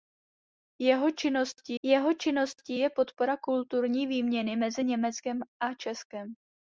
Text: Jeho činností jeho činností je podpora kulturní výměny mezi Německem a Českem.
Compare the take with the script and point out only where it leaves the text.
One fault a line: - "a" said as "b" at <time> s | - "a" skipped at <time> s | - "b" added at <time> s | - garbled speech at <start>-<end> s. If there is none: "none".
none